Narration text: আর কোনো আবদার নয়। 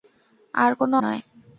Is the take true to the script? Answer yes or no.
no